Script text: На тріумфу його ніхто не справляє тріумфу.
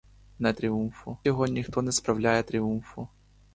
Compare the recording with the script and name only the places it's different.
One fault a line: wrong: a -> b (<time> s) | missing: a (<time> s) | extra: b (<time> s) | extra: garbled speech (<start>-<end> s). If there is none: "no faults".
no faults